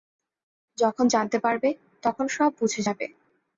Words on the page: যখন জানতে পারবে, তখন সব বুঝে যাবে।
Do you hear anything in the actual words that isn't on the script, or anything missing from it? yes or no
no